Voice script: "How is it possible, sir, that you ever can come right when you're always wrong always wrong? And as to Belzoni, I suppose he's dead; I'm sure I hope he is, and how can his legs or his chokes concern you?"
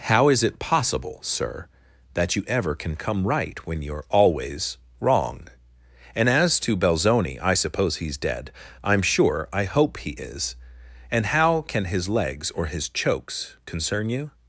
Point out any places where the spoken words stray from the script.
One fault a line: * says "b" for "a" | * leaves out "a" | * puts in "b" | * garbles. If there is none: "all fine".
* leaves out "always wrong"